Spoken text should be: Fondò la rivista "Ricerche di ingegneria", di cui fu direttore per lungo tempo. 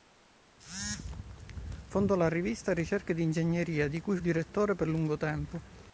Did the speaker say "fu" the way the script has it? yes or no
no